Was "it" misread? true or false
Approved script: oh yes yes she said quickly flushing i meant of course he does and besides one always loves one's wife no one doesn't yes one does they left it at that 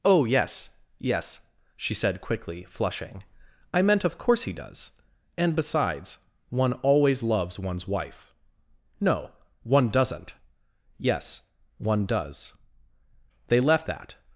true